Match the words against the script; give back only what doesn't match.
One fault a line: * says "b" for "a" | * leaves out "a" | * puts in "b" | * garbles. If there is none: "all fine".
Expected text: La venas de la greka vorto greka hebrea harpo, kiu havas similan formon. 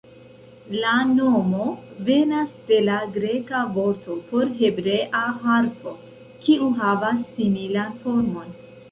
* puts in "nomo"
* says "por" for "greka"